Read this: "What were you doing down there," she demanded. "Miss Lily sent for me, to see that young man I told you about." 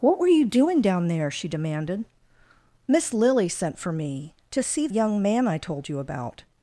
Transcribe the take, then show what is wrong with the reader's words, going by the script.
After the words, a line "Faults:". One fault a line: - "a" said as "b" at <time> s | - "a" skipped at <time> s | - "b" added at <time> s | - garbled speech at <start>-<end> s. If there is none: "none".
"What were you doing down there," she demanded. "Miss Lily sent for me, to see young man I told you about."
Faults:
- "that" skipped at 4.9 s